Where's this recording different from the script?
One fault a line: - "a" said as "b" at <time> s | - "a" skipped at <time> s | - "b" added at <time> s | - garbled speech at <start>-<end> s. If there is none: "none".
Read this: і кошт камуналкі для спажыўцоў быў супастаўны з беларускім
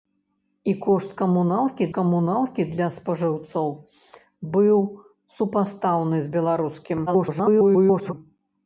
- "камуналкі" added at 2.0 s
- garbled speech at 7.1-8.1 s